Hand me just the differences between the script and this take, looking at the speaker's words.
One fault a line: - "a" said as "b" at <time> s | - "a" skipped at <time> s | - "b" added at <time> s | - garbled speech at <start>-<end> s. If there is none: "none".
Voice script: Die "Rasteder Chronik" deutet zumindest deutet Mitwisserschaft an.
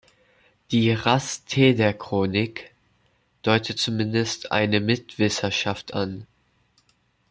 - "deutet" said as "eine" at 4.5 s